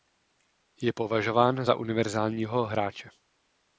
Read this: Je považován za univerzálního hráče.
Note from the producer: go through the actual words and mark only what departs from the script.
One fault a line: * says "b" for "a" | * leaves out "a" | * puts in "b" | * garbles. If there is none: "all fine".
all fine